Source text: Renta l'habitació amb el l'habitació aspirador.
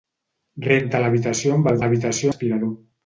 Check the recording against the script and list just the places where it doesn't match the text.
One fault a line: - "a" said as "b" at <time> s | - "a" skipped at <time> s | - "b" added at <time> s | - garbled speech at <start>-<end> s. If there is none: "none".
none